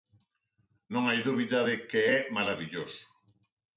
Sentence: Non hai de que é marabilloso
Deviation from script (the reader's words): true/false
true